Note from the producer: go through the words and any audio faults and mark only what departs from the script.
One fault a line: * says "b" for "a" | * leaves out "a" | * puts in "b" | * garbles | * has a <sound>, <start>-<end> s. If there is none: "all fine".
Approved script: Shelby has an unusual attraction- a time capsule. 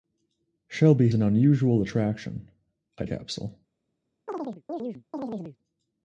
* leaves out "has"
* leaves out "time"
* has a chirp, 4.3-5.6 s